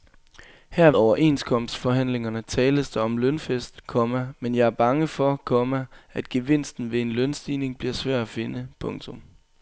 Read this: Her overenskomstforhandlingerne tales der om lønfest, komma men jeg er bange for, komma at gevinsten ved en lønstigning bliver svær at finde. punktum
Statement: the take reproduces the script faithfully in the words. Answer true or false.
true